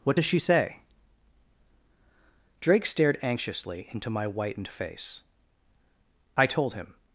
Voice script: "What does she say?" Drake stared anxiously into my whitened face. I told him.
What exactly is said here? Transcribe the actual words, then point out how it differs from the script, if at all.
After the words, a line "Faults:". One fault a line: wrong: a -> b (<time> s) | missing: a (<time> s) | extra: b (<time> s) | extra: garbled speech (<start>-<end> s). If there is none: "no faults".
"What does she say?" Drake stared anxiously into my whitened face. I told him.
Faults:
no faults